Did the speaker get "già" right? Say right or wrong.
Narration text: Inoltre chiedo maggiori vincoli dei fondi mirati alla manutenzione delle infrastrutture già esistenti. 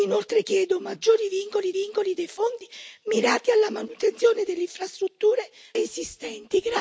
wrong